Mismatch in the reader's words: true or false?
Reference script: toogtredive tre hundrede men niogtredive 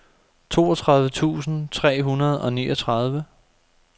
true